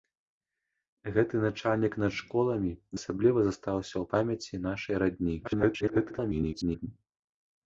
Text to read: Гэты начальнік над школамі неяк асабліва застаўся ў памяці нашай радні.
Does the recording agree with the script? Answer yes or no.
no